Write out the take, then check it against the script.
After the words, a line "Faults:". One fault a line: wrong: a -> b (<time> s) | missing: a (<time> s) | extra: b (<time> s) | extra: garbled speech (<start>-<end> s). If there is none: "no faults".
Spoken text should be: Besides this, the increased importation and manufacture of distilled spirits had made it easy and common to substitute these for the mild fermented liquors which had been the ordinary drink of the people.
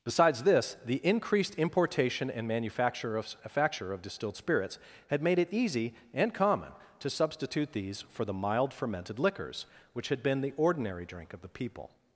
Besides this, the increased importation and manufacture of manufacture of distilled spirits had made it easy and common to substitute these for the mild fermented liquors which had been the ordinary drink of the people.
Faults:
extra: manufacture of (3.4 s)